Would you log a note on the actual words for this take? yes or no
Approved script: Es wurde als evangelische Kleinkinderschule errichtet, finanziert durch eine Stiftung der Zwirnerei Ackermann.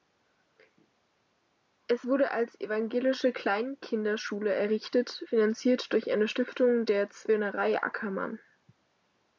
no